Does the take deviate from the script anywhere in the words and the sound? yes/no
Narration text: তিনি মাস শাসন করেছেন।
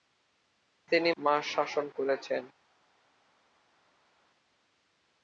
no